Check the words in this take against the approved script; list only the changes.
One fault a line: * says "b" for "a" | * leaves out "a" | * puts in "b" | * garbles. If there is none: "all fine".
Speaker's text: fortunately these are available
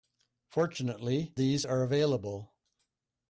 all fine